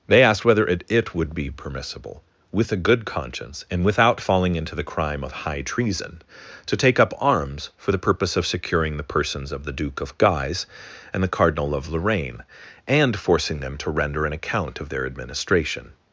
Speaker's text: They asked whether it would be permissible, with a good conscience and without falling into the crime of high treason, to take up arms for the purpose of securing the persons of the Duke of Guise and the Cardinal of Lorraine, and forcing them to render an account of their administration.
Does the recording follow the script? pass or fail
fail